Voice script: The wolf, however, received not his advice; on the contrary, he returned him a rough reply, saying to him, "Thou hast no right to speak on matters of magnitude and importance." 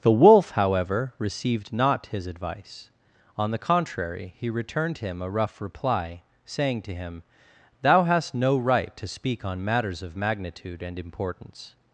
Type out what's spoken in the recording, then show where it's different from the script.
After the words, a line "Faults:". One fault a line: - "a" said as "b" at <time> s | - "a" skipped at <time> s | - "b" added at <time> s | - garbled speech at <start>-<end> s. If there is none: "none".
The wolf, however, received not his advice; on the contrary, he returned him a rough reply, saying to him, "Thou hast no right to speak on matters of magnitude and importance."
Faults:
none